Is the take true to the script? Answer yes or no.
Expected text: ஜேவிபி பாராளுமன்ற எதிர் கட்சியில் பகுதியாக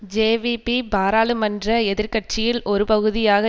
no